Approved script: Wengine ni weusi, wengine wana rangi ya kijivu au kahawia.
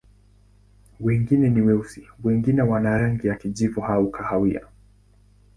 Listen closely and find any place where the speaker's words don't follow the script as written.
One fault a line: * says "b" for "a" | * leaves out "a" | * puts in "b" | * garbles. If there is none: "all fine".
all fine